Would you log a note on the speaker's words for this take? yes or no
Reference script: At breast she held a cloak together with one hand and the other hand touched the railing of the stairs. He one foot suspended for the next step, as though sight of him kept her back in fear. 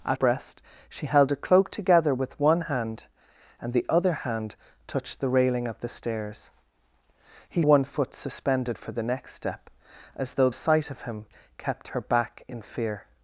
no